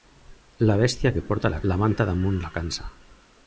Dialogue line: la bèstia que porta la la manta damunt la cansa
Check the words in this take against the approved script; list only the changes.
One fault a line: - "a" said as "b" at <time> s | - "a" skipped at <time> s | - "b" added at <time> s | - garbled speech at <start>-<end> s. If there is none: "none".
none